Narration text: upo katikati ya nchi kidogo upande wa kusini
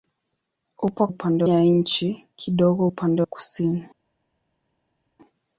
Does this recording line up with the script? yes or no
no